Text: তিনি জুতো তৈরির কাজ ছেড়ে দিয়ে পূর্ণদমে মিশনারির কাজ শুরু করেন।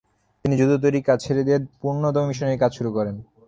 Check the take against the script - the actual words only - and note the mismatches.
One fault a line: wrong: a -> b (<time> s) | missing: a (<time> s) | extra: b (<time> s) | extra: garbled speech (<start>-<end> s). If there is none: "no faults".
no faults